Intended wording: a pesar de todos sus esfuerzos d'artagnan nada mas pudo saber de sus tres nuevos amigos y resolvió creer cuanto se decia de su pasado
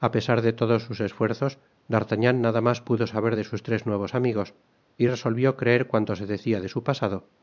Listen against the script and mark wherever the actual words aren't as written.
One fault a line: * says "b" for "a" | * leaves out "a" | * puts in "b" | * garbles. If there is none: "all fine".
all fine